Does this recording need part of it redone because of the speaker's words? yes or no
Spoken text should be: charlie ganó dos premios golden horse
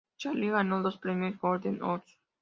no